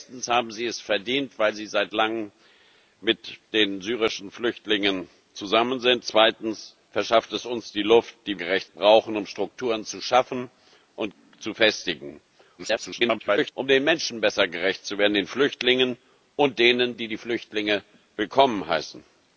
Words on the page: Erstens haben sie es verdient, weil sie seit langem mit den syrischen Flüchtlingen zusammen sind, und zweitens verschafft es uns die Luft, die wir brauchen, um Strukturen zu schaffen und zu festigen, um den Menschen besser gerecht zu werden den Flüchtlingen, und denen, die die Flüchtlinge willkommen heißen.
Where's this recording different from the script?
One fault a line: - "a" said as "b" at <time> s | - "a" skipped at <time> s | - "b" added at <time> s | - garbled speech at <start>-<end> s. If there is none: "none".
- "und" skipped at 6.0 s
- "wir" said as "gerecht" at 8.3 s
- garbled speech at 12.6-13.5 s